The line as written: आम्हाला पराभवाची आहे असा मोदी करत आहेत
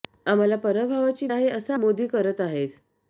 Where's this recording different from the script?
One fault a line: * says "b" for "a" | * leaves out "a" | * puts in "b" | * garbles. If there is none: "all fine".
all fine